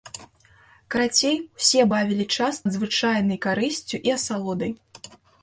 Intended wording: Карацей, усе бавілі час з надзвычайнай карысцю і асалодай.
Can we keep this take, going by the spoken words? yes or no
no